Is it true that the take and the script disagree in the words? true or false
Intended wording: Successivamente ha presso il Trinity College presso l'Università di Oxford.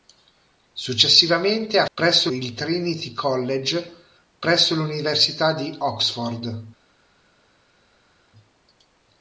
false